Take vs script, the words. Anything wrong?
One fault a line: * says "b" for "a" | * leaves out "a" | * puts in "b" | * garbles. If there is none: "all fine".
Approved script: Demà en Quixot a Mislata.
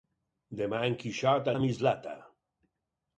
all fine